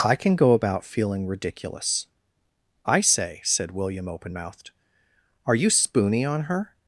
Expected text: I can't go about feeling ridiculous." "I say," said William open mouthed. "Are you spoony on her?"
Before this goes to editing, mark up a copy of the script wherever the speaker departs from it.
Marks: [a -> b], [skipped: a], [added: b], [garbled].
I [can't -> can] go about feeling ridiculous." "I say," said William open mouthed. "Are you spoony on her?"